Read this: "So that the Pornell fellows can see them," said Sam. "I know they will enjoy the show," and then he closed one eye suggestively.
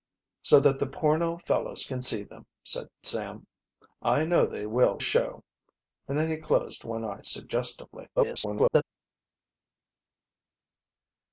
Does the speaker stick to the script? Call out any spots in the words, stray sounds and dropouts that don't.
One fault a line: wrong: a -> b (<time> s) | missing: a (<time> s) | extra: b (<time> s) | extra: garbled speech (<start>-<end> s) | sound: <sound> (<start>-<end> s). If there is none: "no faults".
missing: enjoy the (5.0 s)
extra: garbled speech (8.2-8.8 s)